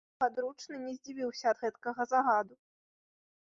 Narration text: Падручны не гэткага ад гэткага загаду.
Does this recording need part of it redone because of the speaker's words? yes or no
yes